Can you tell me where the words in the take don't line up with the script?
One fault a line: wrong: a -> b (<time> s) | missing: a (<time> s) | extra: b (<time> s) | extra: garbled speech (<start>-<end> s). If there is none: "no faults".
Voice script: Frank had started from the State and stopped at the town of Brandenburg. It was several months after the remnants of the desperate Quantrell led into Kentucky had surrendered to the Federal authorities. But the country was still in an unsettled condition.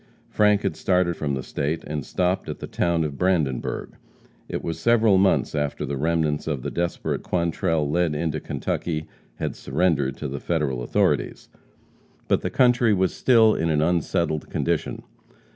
no faults